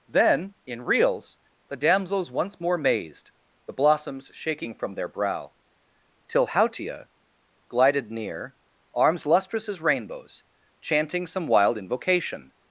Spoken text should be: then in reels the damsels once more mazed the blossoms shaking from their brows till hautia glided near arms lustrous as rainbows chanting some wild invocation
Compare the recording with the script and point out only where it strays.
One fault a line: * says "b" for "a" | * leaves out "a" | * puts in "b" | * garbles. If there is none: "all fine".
* says "brow" for "brows"